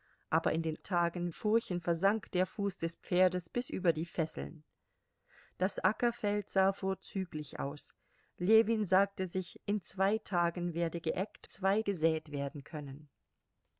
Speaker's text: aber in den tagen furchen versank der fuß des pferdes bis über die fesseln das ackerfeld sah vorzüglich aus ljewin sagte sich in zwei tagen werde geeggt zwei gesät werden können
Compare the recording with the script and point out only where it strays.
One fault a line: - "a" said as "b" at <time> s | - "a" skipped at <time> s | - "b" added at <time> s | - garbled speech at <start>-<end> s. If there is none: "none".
none